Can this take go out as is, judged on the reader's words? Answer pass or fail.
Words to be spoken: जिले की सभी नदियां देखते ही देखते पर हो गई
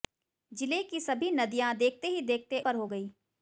pass